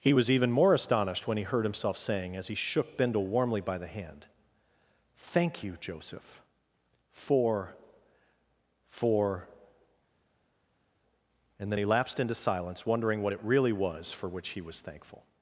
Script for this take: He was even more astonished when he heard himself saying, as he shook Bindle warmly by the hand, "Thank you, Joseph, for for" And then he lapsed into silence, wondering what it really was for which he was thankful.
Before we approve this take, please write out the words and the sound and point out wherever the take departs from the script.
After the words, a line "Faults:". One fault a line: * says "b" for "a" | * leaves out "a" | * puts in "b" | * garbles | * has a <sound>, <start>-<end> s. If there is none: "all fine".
He was even more astonished when he heard himself saying, as he shook Bindle warmly by the hand, "Thank you, Joseph, for for" And then he lapsed into silence, wondering what it really was for which he was thankful.
Faults:
all fine